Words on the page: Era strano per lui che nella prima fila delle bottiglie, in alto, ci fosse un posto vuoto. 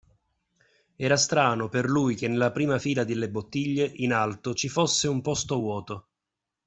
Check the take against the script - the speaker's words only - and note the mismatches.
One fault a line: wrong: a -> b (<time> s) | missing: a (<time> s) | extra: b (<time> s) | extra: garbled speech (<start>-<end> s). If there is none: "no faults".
no faults